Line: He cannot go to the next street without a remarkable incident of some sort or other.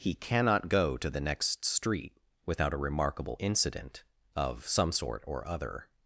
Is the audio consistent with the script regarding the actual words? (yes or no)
yes